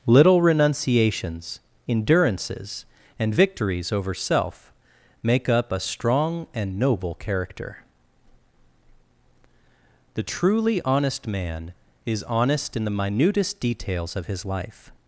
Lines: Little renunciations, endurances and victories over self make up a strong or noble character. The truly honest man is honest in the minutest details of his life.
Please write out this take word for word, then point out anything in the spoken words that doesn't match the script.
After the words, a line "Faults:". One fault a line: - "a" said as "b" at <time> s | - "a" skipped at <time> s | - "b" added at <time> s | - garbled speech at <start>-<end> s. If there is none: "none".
Little renunciations, endurances and victories over self make up a strong and noble character. The truly honest man is honest in the minutest details of his life.
Faults:
- "or" said as "and" at 6.5 s